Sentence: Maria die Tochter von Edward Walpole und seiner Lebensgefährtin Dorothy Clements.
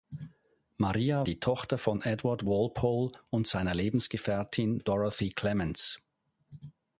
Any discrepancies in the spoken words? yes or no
no